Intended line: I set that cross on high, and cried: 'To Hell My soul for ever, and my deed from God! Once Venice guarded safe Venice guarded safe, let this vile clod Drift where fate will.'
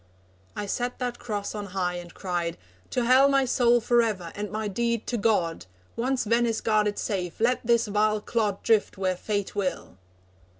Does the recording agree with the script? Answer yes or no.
no